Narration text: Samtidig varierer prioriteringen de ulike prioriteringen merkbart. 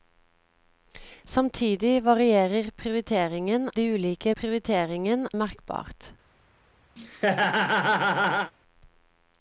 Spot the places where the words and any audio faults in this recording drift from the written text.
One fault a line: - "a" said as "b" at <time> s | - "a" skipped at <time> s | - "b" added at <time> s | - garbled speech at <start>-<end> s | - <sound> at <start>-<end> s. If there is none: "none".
- laugh at 7.0-8.5 s